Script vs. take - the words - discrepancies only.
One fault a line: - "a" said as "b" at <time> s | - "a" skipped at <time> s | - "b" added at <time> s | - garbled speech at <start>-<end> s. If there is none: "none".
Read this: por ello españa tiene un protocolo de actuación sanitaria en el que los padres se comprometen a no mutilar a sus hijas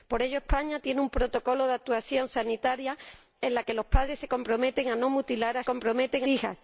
- "sus" said as "comprometen" at 5.6 s